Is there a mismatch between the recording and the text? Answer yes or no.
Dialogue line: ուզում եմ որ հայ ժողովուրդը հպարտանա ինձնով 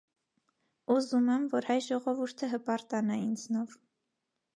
no